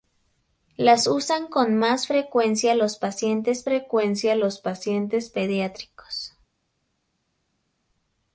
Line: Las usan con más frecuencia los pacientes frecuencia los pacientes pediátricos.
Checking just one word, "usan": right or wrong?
right